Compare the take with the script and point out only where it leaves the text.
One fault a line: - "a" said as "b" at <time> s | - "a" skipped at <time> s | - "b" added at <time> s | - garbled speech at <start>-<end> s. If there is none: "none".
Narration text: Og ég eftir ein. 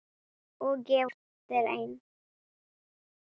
none